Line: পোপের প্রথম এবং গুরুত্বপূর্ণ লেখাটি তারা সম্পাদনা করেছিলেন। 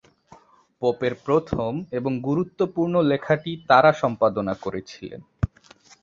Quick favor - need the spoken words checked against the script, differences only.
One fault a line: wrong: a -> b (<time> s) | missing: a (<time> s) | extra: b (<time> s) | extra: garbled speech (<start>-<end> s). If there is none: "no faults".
no faults